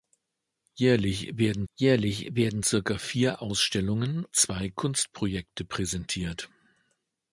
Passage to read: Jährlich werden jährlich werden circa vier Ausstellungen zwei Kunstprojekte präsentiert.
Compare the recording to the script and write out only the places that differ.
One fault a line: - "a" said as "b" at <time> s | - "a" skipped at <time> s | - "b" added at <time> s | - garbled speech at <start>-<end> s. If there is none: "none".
none